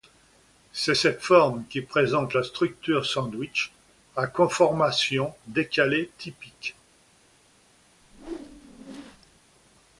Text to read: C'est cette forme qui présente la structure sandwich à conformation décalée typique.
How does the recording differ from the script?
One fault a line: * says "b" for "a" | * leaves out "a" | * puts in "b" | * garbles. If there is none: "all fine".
all fine